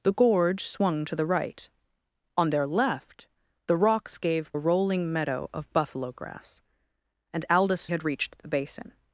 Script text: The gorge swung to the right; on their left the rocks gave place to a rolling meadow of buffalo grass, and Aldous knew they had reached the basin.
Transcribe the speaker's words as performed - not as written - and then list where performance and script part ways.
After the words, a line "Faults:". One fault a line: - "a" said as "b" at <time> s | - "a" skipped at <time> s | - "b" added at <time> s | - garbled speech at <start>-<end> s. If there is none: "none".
The gorge swung to the right; on their left the rocks gave a rolling meadow of buffalo grass, and Aldous had reached the basin.
Faults:
- "place to" skipped at 4.5 s
- "knew they" skipped at 7.9 s